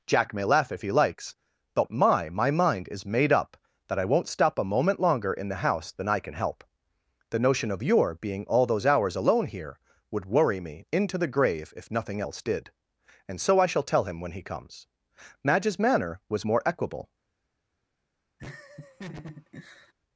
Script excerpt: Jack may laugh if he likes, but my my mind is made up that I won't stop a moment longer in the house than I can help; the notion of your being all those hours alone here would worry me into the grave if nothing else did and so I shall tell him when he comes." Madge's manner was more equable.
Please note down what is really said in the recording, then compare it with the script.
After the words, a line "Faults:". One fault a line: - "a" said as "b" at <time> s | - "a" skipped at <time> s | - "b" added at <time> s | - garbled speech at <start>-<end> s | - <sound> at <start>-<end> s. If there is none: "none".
Jack may laugh if he likes, but my my mind is made up that I won't stop a moment longer in the house than I can help; the notion of your being all those hours alone here would worry me into the grave if nothing else did and so I shall tell him when he comes." Madge's manner was more equable.
Faults:
- laugh at 18.4-19.9 s